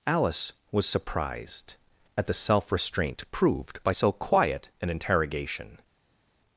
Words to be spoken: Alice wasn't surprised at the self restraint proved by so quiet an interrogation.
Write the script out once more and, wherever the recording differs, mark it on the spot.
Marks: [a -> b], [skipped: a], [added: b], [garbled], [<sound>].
Alice [wasn't -> was] surprised at the self restraint proved by so quiet an interrogation.